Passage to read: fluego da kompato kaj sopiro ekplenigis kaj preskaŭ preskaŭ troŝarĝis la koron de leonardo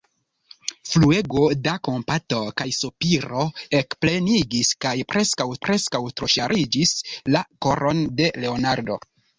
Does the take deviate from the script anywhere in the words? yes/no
no